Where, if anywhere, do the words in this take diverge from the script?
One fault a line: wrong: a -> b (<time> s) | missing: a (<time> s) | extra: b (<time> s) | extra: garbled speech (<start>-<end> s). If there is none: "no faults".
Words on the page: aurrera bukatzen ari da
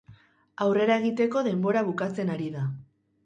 extra: egiteko denbora (1.0 s)